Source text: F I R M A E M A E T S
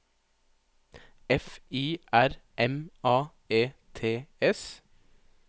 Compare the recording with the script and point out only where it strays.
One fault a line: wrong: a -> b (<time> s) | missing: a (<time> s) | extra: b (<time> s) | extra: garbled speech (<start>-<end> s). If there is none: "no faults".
missing: M A E (3.7 s)